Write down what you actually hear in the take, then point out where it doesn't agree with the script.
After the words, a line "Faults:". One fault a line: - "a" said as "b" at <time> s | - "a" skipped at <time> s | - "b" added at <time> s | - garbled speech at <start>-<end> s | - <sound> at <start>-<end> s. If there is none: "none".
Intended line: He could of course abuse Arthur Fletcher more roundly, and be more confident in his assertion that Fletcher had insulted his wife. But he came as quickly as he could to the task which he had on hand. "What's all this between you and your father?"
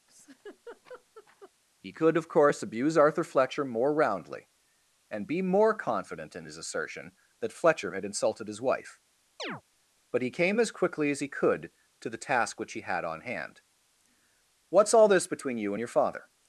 He could of course abuse Arthur Fletcher more roundly, and be more confident in his assertion that Fletcher had insulted his wife. But he came as quickly as he could to the task which he had on hand. "What's all this between you and your father?"
Faults:
- laugh at 0.1-1.5 s
- chirp at 9.4-9.6 s